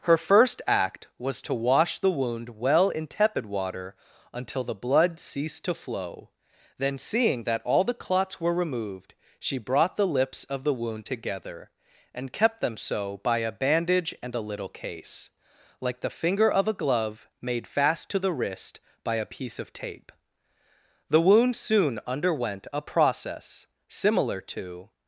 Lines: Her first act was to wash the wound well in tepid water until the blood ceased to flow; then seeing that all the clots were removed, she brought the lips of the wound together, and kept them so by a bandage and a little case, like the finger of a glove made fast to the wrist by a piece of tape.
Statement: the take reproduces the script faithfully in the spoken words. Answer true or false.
false